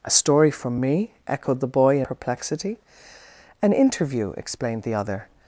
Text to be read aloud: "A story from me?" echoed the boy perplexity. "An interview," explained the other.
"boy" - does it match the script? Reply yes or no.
yes